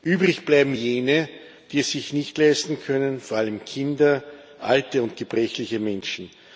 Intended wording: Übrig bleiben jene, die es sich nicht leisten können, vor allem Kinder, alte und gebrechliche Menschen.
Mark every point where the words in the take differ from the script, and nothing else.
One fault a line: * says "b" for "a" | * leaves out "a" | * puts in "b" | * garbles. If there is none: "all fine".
all fine